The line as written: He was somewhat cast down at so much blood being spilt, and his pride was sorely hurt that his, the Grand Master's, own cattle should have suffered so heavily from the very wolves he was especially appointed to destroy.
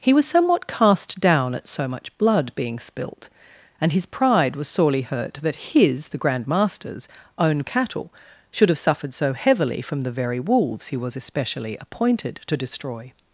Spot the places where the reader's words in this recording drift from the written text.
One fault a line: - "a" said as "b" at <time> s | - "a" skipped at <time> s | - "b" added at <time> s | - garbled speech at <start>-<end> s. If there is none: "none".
none